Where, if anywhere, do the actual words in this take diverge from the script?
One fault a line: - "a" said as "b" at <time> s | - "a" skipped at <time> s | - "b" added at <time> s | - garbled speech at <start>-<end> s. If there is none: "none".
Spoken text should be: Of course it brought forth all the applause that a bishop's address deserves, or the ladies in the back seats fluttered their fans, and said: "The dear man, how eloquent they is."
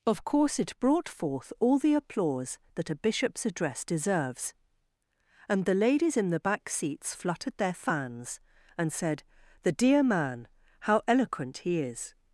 - "or" said as "and" at 5.5 s
- "they" said as "he" at 11.6 s